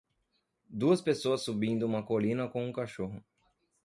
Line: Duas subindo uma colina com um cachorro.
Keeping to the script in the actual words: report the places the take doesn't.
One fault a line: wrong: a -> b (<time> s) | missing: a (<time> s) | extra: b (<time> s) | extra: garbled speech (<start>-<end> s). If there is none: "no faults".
extra: pessoas (1.0 s)